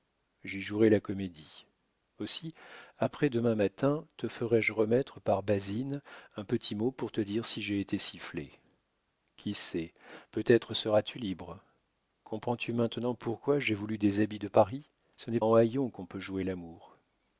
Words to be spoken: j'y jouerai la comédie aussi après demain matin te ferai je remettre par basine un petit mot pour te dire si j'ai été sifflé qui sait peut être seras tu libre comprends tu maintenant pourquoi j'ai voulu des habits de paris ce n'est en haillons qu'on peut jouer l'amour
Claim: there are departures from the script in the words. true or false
false